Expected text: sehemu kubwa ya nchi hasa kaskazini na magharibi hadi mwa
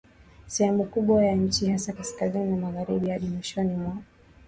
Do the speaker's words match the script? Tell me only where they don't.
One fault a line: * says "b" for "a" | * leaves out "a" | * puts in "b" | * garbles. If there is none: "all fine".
* puts in "mwishoni"